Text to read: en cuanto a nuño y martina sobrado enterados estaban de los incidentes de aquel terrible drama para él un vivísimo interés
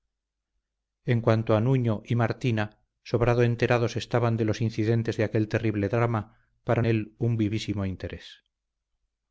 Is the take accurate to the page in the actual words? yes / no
yes